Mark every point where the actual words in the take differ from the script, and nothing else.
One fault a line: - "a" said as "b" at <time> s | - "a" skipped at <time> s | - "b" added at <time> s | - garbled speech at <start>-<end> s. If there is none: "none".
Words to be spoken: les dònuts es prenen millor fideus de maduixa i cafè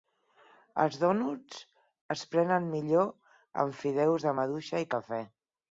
- "les" said as "els" at 0.8 s
- "amb" added at 3.6 s